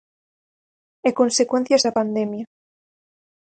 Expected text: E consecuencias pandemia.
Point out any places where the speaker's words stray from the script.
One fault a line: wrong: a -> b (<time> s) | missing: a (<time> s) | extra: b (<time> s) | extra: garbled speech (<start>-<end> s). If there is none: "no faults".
extra: da (1.8 s)